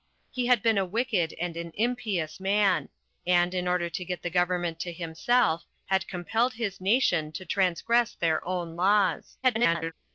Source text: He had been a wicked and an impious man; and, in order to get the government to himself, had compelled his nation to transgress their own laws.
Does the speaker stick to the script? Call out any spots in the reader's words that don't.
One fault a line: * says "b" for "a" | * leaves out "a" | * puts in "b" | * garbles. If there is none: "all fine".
* garbles